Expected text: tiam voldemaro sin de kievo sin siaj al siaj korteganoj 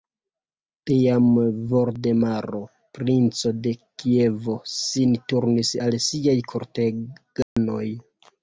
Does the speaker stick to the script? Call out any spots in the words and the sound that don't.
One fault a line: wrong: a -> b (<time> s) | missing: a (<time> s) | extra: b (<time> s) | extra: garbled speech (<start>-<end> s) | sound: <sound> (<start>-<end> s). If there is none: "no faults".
wrong: sin -> princo (3.0 s)
wrong: siaj -> turnis (5.3 s)
sound: dropout (7.4-7.6 s)